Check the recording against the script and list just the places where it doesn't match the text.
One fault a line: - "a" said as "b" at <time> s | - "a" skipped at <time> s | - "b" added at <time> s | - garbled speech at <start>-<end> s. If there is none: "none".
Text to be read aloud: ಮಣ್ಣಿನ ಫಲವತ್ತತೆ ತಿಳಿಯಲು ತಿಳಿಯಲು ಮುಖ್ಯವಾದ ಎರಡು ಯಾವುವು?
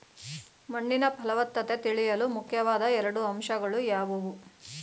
- "ತಿಳಿಯಲು" skipped at 2.3 s
- "ಅಂಶಗಳು" added at 3.2 s